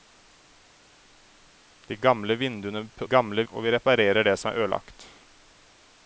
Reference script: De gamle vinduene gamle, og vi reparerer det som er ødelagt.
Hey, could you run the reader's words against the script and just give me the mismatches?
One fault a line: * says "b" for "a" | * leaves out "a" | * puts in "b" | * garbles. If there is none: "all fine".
all fine